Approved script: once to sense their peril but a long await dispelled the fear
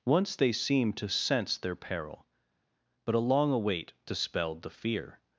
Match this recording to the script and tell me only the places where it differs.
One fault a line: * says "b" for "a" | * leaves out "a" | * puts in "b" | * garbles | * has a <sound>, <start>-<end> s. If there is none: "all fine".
* puts in "they seemed"